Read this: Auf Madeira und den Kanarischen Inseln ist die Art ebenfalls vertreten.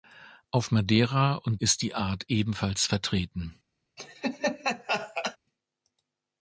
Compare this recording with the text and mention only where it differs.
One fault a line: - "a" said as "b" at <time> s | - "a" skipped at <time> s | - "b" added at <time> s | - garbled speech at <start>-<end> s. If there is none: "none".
- "den Kanarischen Inseln" skipped at 1.6 s